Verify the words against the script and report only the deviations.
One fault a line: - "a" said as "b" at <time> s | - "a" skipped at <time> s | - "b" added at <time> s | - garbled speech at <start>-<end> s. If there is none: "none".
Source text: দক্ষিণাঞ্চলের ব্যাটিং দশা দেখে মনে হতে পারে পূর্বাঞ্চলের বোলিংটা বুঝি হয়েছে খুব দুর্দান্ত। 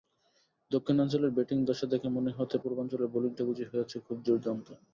- "পারে" skipped at 2.6 s